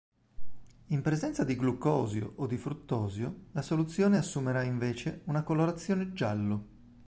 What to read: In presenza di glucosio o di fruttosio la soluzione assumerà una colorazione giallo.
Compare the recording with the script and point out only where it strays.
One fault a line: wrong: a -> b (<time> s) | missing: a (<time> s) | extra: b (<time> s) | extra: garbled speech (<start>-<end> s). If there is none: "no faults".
extra: invece (4.6 s)